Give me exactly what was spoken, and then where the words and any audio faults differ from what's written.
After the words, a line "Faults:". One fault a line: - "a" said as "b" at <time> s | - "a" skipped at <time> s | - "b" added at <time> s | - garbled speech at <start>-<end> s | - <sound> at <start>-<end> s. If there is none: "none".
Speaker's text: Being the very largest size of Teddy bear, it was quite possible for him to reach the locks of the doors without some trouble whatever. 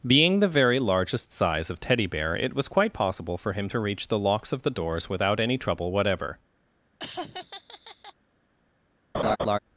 Being the very largest size of Teddy bear, it was quite possible for him to reach the locks of the doors without any trouble whatever.
Faults:
- "some" said as "any" at 5.4 s
- laugh at 7.0-8.1 s
- laugh at 9.1-9.6 s